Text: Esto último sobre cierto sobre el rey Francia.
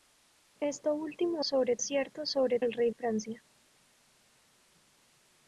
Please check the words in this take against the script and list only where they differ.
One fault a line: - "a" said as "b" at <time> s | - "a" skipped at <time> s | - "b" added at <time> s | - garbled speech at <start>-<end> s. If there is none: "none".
none